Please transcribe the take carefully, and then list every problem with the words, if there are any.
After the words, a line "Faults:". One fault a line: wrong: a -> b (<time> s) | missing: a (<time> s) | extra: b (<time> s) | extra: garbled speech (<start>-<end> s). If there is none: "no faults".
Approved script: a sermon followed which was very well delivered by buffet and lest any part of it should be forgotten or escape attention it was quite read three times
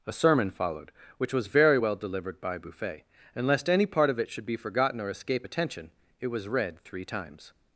a sermon followed which was very well delivered by buffet and lest any part of it should be forgotten or escape attention it was read three times
Faults:
missing: quite (6.5 s)